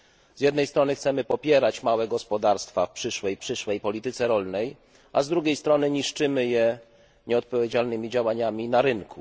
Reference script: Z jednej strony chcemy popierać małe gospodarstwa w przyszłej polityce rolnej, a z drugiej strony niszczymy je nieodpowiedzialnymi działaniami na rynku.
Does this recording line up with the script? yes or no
no